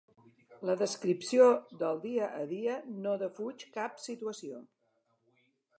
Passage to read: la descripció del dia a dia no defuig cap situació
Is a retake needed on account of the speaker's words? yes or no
no